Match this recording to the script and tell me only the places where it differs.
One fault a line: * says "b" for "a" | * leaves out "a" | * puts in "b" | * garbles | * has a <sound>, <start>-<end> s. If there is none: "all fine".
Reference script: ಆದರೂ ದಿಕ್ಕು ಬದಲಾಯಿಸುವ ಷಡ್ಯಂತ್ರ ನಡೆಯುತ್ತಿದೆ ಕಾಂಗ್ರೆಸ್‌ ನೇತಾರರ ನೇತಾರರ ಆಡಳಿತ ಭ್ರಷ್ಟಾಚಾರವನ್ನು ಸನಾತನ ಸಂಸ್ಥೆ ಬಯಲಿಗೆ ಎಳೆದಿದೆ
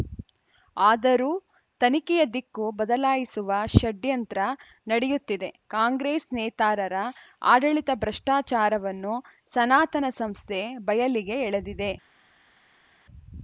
* puts in "ತನಿಖೆಯ"
* leaves out "ನೇತಾರರ"